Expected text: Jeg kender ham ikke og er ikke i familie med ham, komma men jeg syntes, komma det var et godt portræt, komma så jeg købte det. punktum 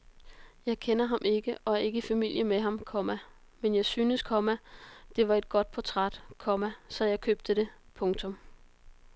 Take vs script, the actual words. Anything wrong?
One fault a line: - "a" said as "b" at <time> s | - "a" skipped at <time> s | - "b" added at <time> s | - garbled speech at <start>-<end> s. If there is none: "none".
none